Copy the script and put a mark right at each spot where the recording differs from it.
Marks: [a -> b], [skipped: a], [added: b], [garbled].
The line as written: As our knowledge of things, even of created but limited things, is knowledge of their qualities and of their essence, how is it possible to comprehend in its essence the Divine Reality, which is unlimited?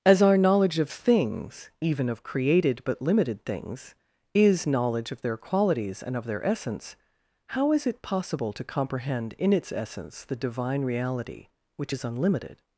As our knowledge of things, even of created but limited things, is knowledge of their qualities and of their essence, how is it possible to comprehend in its essence the Divine Reality, which is unlimited?